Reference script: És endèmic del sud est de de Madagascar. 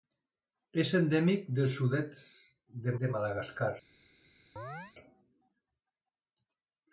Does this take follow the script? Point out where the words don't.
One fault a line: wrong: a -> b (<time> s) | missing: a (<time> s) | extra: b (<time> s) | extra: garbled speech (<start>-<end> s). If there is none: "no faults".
no faults